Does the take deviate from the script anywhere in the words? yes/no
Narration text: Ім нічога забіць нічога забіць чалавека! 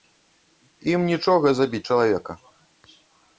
yes